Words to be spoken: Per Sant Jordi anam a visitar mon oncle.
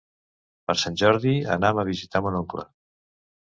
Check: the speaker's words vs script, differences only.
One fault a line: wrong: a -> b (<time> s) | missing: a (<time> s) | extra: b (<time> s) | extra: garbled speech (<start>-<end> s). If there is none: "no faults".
no faults